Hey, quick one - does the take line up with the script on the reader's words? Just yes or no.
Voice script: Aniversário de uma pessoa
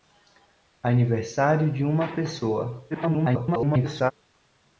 no